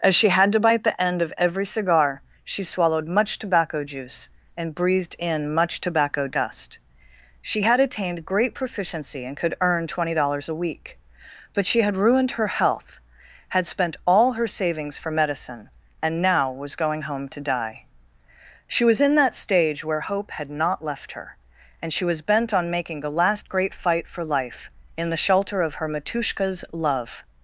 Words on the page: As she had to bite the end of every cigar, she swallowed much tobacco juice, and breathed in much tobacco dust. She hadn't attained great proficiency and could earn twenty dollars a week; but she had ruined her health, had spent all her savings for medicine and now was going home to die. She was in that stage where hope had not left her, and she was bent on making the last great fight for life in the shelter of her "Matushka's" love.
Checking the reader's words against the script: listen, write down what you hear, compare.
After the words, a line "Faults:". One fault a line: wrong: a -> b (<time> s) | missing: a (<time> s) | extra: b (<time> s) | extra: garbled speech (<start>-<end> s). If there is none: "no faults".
As she had to bite the end of every cigar, she swallowed much tobacco juice, and breathed in much tobacco dust. She had attained great proficiency and could earn twenty dollars a week; but she had ruined her health, had spent all her savings for medicine and now was going home to die. She was in that stage where hope had not left her, and she was bent on making the last great fight for life in the shelter of her "Matushka's" love.
Faults:
wrong: hadn't -> had (7.6 s)